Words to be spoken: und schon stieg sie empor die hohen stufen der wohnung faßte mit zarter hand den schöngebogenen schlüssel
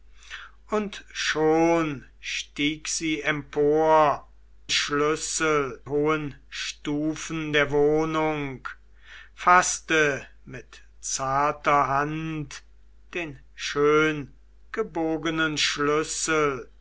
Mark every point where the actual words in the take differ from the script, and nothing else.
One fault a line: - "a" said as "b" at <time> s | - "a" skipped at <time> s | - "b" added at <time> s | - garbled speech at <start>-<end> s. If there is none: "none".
- "die" said as "schlüssel" at 4.7 s